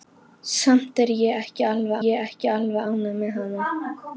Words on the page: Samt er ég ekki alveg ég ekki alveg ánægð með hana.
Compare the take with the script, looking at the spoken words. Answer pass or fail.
pass